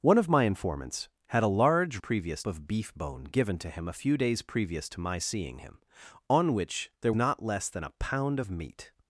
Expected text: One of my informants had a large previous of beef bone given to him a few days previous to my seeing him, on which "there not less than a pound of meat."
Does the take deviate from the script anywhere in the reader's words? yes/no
no